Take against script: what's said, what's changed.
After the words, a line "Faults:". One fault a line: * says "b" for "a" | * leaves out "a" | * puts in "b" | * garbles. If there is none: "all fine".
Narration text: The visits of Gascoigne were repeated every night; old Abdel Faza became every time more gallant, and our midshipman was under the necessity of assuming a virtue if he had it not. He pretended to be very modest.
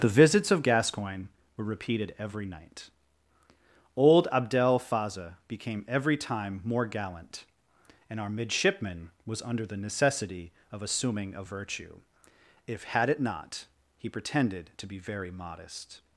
The visits of Gascoigne were repeated every night; old Abdel Faza became every time more gallant, and our midshipman was under the necessity of assuming a virtue if had it not. He pretended to be very modest.
Faults:
* leaves out "he"